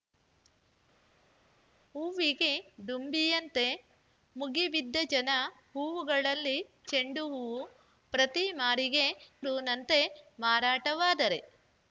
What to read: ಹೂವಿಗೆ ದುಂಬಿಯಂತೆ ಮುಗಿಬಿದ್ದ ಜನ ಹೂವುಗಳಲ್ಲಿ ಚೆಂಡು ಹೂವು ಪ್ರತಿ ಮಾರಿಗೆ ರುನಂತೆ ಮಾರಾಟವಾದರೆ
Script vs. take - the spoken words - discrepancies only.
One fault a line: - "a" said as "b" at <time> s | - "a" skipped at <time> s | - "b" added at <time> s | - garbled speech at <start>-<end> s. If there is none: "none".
none